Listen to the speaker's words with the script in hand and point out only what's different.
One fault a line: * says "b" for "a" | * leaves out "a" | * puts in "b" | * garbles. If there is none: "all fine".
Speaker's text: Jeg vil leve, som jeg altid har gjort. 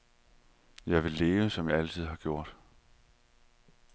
all fine